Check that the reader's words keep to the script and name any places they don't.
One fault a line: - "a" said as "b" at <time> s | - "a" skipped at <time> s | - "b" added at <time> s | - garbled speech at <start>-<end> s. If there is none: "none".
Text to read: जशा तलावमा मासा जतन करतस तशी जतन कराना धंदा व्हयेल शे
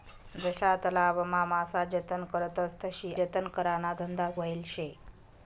none